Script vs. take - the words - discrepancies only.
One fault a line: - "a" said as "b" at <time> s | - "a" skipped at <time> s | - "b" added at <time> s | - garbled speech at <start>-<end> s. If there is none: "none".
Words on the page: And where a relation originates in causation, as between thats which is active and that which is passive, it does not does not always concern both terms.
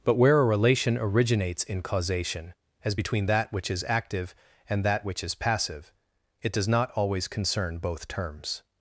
- "And" said as "But" at 0.0 s
- "thats" said as "that" at 3.2 s
- "does not" skipped at 6.9 s